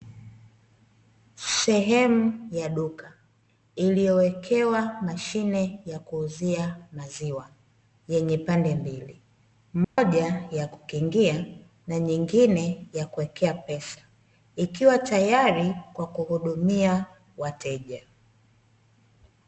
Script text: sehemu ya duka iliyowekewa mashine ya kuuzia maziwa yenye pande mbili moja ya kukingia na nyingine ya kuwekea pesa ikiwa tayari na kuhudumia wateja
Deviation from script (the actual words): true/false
true